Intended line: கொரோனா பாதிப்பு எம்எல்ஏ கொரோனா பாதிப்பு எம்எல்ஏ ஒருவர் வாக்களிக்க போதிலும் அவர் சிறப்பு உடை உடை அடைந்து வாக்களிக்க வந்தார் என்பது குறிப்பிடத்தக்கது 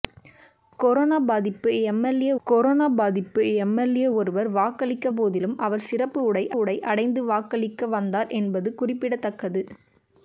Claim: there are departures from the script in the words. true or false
false